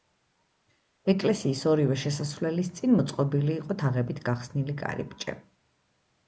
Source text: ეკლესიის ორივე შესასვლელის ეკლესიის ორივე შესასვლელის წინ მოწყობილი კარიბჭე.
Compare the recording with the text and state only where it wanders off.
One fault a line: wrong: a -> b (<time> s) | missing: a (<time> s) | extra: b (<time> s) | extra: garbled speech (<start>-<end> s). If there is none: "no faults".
wrong: ეკლესიის ორივე შესასვლელის წინ მოწყობილი -> წინ მოწყობილი იყო თაღებით გახსნილი (2.8 s)